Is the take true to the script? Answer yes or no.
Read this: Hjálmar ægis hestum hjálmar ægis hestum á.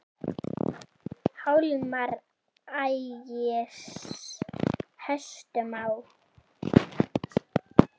no